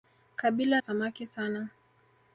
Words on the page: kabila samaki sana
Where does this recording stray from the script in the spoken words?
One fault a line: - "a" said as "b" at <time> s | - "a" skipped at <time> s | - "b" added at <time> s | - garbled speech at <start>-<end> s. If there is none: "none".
none